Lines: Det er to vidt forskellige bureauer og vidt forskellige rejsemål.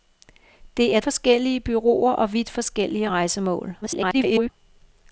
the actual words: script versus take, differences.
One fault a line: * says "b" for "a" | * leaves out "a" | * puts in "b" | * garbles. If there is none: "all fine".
* leaves out "to vidt"
* garbles